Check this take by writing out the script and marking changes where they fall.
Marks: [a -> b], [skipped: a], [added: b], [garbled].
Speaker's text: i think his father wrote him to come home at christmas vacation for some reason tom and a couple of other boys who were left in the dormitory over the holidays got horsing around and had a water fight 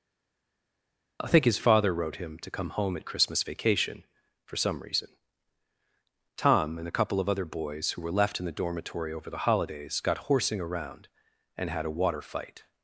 i think his father wrote him to come home at christmas vacation for some reason tom and a couple of other boys who were left in the dormitory over the holidays got horsing around and had a water fight